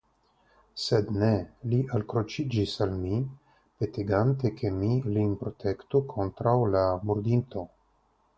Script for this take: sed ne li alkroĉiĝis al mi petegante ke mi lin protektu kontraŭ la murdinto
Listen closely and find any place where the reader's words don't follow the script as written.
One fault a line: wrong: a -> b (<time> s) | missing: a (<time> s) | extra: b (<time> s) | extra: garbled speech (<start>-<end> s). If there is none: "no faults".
no faults